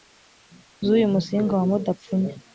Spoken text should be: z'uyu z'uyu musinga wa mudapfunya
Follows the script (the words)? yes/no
no